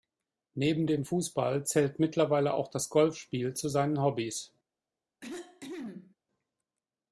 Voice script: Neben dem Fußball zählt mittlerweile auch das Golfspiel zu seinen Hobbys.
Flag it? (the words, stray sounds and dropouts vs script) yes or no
yes